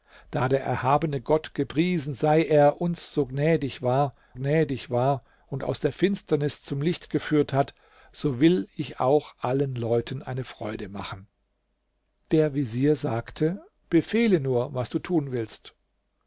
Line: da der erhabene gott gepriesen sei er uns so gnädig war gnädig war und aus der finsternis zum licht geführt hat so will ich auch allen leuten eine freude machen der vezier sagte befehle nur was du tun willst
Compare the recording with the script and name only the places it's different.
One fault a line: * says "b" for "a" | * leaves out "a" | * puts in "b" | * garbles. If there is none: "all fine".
all fine